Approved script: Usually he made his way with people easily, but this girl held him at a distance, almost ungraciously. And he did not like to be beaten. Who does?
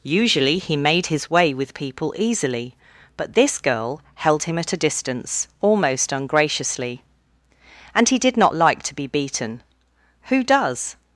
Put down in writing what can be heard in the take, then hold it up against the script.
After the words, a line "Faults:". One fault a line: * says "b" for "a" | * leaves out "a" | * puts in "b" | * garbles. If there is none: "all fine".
Usually he made his way with people easily, but this girl held him at a distance, almost ungraciously. And he did not like to be beaten. Who does?
Faults:
all fine